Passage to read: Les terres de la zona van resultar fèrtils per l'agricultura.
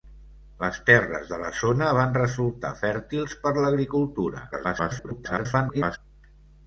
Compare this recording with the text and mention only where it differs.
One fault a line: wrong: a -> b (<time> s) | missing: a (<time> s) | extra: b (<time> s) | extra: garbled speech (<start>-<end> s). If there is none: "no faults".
extra: garbled speech (4.5-6.0 s)